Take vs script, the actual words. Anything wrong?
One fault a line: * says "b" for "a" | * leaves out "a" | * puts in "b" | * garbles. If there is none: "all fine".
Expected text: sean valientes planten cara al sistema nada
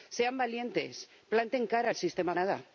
all fine